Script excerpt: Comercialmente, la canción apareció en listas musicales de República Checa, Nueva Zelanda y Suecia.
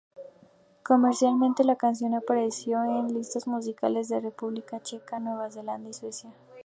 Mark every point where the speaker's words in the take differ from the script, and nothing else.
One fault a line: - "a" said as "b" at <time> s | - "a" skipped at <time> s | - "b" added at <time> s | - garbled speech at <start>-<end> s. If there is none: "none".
none